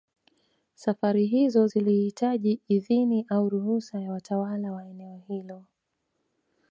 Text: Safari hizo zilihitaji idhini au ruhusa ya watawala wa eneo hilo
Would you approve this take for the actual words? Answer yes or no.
yes